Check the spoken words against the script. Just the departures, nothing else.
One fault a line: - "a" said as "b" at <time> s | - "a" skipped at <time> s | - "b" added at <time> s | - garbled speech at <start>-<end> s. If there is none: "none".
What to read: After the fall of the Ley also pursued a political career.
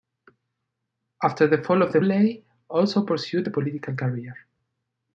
none